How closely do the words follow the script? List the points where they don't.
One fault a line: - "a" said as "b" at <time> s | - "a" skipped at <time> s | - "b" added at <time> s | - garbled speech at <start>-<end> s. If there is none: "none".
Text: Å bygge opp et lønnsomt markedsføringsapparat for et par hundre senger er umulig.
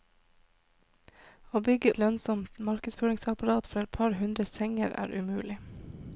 - "opp" skipped at 1.9 s